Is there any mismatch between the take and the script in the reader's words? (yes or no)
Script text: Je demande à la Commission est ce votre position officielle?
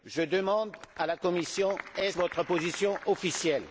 yes